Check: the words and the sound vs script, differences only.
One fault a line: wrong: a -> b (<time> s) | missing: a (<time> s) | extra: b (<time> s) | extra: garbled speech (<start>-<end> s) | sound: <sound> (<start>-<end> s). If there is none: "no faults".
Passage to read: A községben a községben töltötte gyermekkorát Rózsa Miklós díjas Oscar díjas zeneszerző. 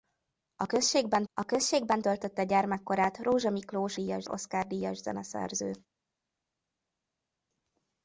no faults